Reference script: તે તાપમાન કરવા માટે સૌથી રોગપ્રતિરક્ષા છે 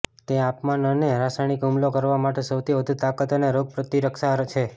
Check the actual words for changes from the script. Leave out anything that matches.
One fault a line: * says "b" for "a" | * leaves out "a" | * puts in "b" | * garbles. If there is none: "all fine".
* puts in "અને રાસાયણિક હુમલો"
* puts in "વધુ તાકાત અને"